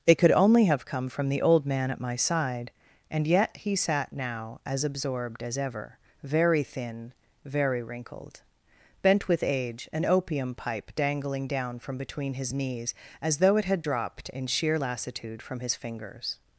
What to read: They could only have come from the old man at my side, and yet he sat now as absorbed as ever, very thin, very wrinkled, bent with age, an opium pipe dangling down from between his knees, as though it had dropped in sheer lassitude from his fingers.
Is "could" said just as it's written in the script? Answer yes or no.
yes